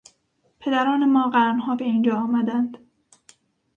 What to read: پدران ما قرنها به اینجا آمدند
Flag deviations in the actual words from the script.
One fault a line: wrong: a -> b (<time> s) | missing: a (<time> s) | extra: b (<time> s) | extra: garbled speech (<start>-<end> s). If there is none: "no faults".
no faults